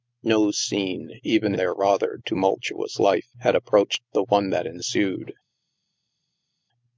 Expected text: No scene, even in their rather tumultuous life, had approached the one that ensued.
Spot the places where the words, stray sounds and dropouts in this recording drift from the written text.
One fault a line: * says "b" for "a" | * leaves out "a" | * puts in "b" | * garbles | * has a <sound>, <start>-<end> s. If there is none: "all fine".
* leaves out "in"